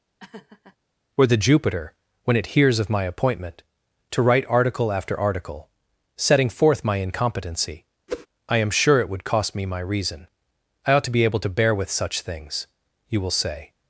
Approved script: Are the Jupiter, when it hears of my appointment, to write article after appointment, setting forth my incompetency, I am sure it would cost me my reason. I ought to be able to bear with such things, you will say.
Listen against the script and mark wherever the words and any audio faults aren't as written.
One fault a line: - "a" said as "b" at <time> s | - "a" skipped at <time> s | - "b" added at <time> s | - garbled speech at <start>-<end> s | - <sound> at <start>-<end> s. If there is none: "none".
- laugh at 0.2-0.8 s
- "Are" said as "Were" at 1.1 s
- "appointment" said as "article" at 5.2 s
- whoosh at 8.1-8.3 s